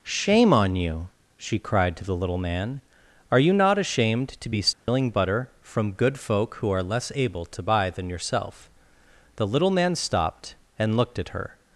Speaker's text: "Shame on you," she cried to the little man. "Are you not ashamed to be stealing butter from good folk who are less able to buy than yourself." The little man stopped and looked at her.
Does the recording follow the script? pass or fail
pass